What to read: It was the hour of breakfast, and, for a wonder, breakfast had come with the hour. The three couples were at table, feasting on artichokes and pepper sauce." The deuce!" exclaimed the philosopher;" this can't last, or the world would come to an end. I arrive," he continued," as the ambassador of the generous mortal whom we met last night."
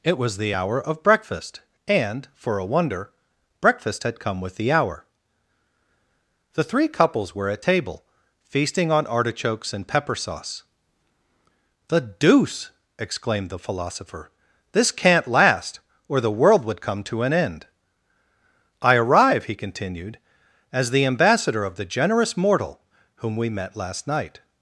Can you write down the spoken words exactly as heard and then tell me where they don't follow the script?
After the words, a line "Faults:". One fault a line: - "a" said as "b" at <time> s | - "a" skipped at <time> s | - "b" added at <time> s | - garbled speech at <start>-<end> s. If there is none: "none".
It was the hour of breakfast, and, for a wonder, breakfast had come with the hour. The three couples were at table, feasting on artichokes and pepper sauce." The deuce!" exclaimed the philosopher;" this can't last, or the world would come to an end. I arrive," he continued," as the ambassador of the generous mortal whom we met last night."
Faults:
none